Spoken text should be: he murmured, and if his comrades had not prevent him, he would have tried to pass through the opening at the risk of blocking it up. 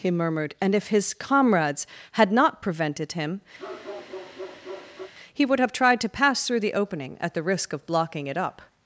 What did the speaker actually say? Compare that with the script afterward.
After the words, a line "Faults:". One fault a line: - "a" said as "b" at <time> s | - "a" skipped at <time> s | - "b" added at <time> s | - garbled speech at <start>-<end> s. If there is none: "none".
he murmured, and if his comrades had not prevented him, he would have tried to pass through the opening at the risk of blocking it up.
Faults:
- "prevent" said as "prevented" at 2.6 s